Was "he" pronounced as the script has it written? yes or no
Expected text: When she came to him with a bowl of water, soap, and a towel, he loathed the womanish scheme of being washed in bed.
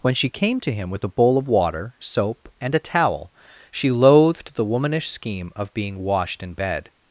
no